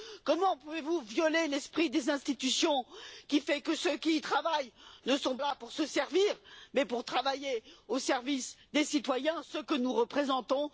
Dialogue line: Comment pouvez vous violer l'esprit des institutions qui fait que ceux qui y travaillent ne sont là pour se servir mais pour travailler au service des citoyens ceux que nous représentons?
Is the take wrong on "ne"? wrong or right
right